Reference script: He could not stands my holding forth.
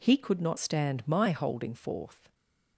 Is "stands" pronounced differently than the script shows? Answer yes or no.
yes